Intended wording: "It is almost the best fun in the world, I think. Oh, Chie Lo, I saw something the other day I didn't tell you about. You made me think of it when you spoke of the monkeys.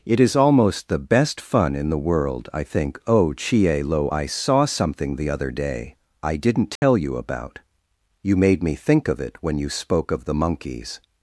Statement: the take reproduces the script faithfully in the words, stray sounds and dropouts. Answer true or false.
false